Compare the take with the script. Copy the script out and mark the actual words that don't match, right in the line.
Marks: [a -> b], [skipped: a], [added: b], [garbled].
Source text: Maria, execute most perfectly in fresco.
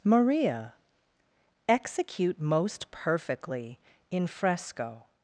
Maria, execute most perfectly in fresco.